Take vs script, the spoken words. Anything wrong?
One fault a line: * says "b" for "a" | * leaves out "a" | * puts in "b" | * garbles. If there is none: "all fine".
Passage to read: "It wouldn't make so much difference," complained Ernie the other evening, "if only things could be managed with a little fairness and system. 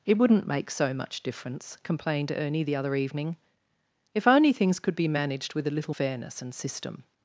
all fine